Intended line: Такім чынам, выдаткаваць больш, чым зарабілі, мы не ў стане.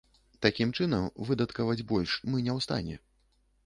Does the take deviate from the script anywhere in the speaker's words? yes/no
yes